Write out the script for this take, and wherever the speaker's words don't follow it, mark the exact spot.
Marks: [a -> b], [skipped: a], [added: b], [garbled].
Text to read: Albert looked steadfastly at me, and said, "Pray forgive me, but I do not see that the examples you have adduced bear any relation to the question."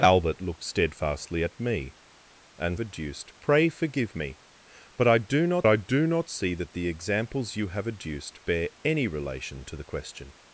Albert looked steadfastly at me, and [said, -> adduced] "Pray forgive me, but I do not [added: I do not] see that the examples you have adduced bear any relation to the question."